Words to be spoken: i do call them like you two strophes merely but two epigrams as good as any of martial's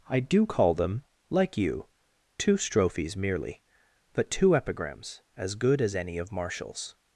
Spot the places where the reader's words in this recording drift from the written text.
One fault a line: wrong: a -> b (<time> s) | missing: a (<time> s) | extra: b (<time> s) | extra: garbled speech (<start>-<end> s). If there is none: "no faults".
no faults